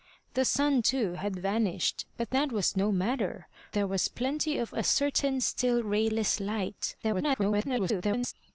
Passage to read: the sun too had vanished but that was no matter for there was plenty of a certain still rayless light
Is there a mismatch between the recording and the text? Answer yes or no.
yes